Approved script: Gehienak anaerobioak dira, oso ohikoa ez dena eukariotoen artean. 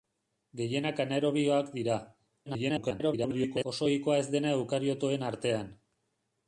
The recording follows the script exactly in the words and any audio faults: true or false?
false